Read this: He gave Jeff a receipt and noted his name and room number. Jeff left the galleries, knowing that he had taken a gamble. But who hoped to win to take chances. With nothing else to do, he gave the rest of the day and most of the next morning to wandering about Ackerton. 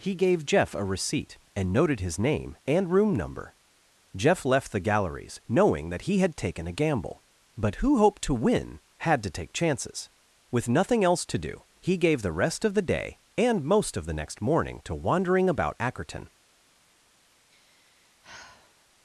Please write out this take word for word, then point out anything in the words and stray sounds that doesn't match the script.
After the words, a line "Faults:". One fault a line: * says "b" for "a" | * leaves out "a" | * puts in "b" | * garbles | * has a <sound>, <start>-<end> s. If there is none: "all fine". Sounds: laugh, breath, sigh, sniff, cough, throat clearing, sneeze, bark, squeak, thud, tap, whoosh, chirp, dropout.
He gave Jeff a receipt and noted his name and room number. Jeff left the galleries, knowing that he had taken a gamble. But who hoped to win had to take chances. With nothing else to do, he gave the rest of the day and most of the next morning to wandering about Ackerton.
Faults:
* puts in "had"
* has a sigh, 17.5-18.9 s